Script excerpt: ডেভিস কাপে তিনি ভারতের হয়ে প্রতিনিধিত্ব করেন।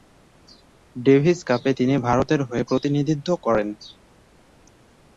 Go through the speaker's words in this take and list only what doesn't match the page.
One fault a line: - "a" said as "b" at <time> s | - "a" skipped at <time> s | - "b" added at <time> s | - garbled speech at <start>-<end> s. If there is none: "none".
none